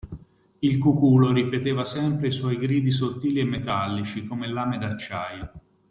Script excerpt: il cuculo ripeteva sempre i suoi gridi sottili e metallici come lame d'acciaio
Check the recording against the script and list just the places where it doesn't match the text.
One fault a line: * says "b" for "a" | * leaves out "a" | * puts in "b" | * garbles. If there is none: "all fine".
all fine